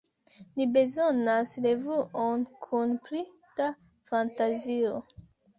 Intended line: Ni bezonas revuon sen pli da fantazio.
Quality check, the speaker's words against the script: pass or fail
fail